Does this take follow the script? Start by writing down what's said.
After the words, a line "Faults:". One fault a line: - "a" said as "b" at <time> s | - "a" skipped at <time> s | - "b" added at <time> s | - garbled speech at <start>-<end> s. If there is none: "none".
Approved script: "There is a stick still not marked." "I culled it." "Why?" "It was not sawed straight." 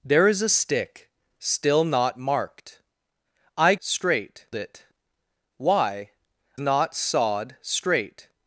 "There is a stick still not marked." "I straight it." "Why?" "Not sawed straight."
Faults:
- "culled" said as "straight" at 3.8 s
- "It was" skipped at 6.1 s